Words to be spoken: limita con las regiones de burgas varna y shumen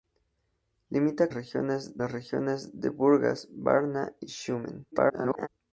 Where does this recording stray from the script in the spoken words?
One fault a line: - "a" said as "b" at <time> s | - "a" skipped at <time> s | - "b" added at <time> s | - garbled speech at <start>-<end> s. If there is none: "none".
- "con" said as "regiones" at 1.3 s
- garbled speech at 4.9-5.5 s